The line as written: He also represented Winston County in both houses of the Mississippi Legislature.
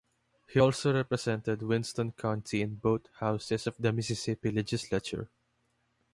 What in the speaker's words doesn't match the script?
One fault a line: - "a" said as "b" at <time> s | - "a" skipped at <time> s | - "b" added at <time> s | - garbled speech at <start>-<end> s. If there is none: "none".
none